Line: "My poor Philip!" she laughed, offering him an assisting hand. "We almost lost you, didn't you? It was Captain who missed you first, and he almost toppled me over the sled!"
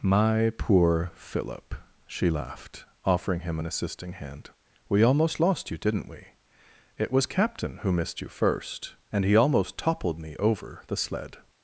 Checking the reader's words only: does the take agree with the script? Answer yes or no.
no